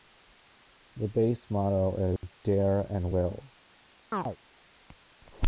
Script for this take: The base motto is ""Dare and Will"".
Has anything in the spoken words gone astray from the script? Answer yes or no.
no